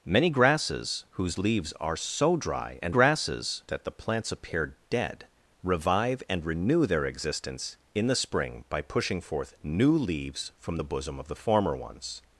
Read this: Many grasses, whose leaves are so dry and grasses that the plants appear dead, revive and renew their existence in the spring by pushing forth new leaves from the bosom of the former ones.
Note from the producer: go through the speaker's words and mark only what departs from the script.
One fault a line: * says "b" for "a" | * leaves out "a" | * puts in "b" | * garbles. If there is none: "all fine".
all fine